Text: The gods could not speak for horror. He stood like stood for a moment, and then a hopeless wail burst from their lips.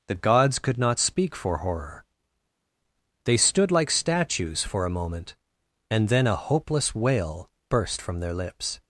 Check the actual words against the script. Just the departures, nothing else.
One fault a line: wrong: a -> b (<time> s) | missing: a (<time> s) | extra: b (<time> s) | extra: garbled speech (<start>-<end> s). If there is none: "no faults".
wrong: He -> They (3.2 s)
wrong: stood -> statues (3.9 s)